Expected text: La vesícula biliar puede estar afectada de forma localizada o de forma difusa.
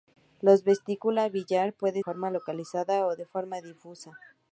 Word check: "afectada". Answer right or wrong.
wrong